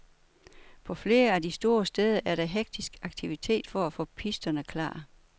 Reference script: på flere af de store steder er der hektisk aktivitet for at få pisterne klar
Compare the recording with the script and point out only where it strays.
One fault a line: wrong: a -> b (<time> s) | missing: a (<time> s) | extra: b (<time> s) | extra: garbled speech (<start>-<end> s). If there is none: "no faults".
no faults